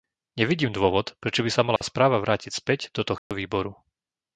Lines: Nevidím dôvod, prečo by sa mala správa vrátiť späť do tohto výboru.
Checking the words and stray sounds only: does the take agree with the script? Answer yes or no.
no